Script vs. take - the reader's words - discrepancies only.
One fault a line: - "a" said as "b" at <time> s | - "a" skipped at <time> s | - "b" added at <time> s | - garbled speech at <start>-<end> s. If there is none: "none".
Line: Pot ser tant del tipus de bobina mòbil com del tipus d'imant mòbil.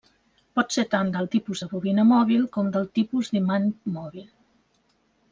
none